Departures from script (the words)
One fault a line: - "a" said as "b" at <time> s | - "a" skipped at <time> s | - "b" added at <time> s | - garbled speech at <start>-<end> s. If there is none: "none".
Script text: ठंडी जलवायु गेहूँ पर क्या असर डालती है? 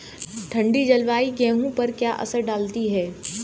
none